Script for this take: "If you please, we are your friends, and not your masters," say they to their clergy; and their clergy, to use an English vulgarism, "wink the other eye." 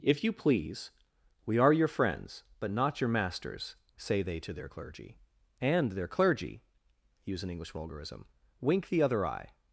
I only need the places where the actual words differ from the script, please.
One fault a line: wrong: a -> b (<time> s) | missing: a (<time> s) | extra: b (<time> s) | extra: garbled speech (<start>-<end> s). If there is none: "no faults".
wrong: and -> but (2.6 s)
missing: to (6.6 s)